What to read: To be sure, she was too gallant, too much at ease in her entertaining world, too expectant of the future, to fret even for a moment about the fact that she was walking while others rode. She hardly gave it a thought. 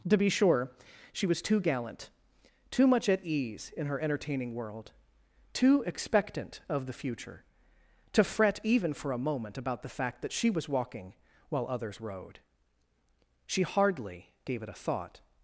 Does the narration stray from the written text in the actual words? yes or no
no